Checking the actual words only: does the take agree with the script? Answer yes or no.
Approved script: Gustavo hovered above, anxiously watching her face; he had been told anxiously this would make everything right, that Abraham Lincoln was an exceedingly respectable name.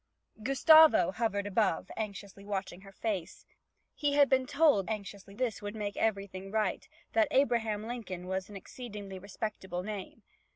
yes